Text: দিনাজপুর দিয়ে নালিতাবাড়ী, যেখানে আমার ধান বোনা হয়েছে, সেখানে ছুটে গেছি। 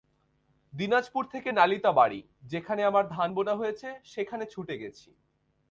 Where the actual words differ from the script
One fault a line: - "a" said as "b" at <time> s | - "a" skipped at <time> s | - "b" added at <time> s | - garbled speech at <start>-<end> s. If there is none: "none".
- "দিয়ে" said as "থেকে" at 1.2 s